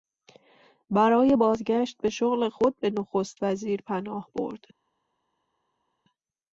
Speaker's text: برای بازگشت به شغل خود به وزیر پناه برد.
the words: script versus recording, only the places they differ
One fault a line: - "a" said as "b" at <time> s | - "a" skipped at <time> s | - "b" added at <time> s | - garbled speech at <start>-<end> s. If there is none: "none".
- "نخست" added at 2.9 s